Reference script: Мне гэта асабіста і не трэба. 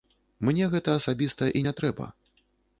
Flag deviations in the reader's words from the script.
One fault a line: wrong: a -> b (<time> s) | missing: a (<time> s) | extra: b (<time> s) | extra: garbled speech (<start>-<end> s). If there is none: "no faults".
no faults